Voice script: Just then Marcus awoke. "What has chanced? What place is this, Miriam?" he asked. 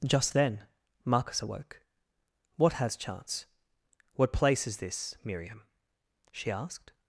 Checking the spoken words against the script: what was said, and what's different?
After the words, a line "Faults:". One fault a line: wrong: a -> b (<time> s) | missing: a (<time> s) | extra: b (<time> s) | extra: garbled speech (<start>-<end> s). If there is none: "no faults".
Just then Marcus awoke. "What has chance? What place is this, Miriam?" she asked.
Faults:
wrong: chanced -> chance (3.0 s)
wrong: he -> she (6.3 s)